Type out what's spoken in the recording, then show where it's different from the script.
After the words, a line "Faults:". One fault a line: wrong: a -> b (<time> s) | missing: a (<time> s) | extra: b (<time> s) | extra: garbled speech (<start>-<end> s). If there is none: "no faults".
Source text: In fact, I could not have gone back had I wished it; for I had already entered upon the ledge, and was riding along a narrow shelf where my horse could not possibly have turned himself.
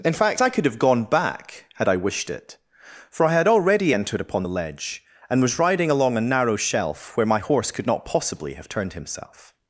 In fact, I could have gone back had I wished it; for I had already entered upon the ledge, and was riding along a narrow shelf where my horse could not possibly have turned himself.
Faults:
missing: not (0.7 s)